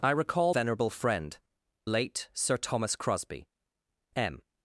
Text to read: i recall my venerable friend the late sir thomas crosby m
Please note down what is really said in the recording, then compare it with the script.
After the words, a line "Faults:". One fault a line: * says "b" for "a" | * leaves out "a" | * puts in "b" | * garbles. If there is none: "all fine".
i recall venerable friend late sir thomas crosby m
Faults:
* leaves out "my"
* leaves out "the"